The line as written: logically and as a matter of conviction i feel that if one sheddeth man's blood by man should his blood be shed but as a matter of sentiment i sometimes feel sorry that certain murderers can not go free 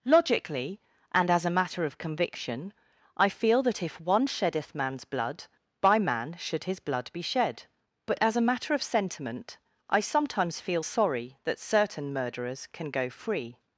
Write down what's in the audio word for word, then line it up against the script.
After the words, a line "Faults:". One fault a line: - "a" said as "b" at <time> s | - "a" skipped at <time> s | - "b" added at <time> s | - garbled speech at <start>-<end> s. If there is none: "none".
logically and as a matter of conviction i feel that if one sheddeth man's blood by man should his blood be shed but as a matter of sentiment i sometimes feel sorry that certain murderers can go free
Faults:
- "not" skipped at 12.9 s